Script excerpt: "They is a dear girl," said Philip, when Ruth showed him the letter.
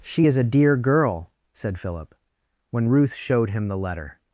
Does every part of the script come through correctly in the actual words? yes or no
no